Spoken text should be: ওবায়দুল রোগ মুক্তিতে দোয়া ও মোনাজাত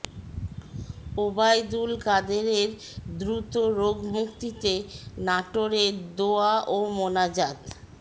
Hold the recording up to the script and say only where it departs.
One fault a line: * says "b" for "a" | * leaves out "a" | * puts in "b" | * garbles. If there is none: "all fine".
* puts in "কাদেরের দ্রুত"
* puts in "নাটোরে"